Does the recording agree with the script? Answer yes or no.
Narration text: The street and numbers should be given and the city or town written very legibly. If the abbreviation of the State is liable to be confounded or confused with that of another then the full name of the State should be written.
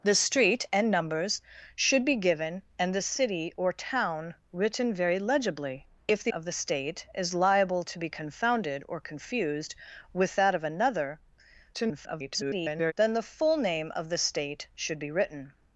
no